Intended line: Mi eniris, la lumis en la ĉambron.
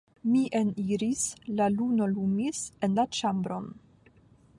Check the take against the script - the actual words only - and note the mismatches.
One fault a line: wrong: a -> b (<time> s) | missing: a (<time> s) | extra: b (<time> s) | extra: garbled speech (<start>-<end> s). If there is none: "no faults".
extra: luno (1.8 s)